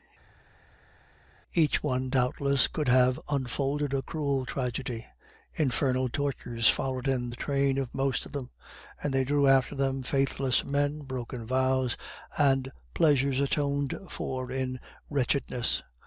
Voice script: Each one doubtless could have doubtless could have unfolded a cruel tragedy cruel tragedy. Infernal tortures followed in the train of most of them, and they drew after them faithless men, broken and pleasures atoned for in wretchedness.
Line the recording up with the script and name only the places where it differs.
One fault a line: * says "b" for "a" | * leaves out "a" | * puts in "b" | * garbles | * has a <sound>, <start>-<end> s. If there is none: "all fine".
* leaves out "doubtless could have"
* leaves out "cruel tragedy"
* puts in "vows"